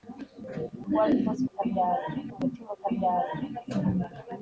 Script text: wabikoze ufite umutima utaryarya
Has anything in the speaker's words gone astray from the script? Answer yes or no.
yes